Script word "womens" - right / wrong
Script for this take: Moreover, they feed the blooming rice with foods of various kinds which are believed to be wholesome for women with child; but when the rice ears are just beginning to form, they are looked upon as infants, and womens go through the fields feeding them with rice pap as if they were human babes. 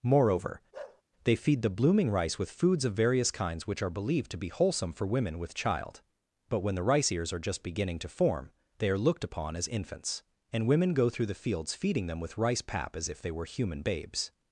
wrong